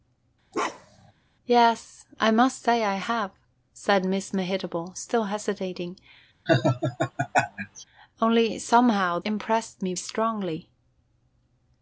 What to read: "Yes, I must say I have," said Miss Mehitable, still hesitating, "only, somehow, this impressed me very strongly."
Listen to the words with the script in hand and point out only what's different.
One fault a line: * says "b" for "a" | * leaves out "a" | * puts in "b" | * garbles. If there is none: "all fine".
* leaves out "this"
* leaves out "very"